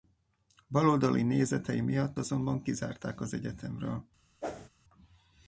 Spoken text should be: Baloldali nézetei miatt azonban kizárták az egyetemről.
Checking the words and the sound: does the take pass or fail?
fail